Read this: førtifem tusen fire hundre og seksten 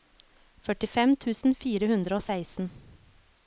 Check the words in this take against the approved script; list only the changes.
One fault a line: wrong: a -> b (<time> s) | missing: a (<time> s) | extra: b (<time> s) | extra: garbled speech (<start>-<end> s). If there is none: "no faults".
no faults